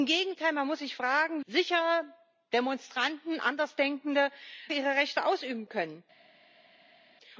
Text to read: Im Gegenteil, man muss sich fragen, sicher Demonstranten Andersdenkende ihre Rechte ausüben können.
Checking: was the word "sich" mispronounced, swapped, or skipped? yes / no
no